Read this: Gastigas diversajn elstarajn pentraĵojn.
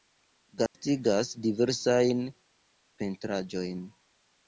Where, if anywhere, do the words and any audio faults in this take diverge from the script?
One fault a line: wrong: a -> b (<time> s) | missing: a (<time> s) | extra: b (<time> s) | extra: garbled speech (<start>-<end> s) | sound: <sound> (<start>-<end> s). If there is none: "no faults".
sound: dropout (0.7-0.7 s)
missing: elstarajn (2.2 s)